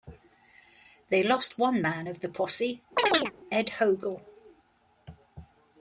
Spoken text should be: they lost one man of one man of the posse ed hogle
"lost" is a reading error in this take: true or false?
false